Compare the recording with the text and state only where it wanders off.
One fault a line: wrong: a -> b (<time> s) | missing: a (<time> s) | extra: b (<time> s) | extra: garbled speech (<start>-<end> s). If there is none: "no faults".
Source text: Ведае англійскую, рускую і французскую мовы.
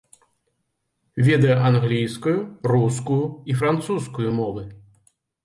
no faults